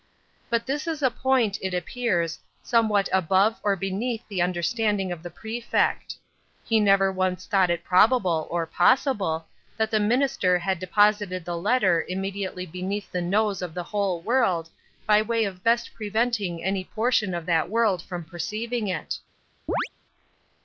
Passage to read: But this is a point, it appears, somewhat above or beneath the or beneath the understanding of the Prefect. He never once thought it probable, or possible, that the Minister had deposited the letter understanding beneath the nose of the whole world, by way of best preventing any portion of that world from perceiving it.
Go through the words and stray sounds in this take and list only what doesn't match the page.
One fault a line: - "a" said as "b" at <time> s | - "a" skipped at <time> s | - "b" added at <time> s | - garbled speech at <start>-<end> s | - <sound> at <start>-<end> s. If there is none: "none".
- "or beneath the" skipped at 4.4 s
- "understanding" said as "immediately" at 12.1 s
- chirp at 19.7-19.9 s